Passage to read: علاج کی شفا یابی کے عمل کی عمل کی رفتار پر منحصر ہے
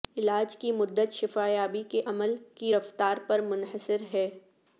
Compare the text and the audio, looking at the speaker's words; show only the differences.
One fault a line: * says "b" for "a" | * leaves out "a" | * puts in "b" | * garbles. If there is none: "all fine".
* puts in "مدت"
* leaves out "عمل کی"